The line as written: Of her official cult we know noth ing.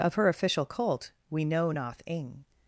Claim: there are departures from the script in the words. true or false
false